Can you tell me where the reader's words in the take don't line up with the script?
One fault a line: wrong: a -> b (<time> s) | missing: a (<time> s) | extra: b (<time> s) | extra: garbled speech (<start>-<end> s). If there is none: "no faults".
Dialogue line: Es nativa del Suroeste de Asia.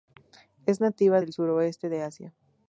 no faults